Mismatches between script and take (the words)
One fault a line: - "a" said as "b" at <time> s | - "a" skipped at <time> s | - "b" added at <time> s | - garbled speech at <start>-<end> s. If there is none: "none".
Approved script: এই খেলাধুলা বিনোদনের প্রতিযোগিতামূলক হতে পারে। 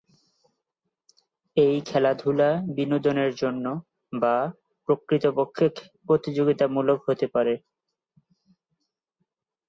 - "জন্য বা প্রকৃতপক্ষে" added at 3.3 s